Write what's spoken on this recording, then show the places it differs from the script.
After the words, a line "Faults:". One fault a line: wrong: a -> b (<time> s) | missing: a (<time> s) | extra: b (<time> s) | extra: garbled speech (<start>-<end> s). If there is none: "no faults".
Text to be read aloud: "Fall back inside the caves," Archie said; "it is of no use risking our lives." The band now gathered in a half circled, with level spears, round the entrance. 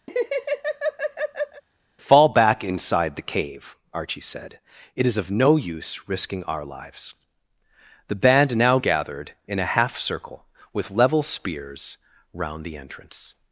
"Fall back inside the cave," Archie said; "it is of no use risking our lives." The band now gathered in a half circle, with level spears, round the entrance.
Faults:
wrong: caves -> cave (3.2 s)
wrong: circled -> circle (10.0 s)